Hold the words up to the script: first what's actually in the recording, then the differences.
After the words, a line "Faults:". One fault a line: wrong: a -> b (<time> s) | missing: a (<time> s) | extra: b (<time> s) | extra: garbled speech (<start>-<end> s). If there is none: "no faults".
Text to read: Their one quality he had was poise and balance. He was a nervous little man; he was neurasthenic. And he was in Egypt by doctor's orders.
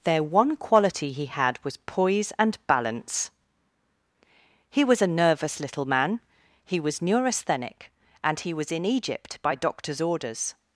Their one quality he had was poise and balance. He was a nervous little man; he was neurasthenic. And he was in Egypt by doctor's orders.
Faults:
no faults